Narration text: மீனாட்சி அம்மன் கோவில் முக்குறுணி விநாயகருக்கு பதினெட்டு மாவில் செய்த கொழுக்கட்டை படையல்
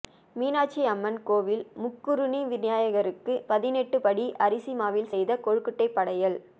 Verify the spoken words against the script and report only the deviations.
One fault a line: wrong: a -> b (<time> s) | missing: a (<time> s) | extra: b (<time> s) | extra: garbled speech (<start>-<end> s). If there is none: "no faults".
extra: படி அரிசி (4.0 s)